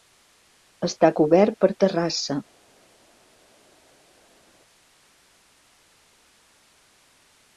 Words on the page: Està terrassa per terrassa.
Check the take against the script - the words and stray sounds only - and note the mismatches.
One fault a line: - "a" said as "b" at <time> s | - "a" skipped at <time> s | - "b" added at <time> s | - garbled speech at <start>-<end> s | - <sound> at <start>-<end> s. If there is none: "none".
- "terrassa" said as "cobert" at 1.2 s